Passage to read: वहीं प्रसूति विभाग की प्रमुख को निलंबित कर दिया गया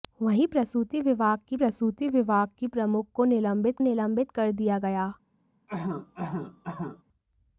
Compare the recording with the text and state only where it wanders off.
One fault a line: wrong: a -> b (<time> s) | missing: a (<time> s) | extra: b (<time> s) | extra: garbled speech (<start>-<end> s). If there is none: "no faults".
extra: प्रसूति विभाग की (1.5 s)
extra: निलंबित (3.8 s)